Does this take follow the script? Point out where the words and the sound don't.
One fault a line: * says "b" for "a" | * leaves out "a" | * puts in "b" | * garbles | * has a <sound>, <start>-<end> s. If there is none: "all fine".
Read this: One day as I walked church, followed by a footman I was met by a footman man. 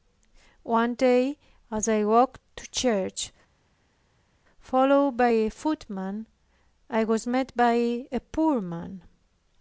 * puts in "to"
* says "poor" for "footman"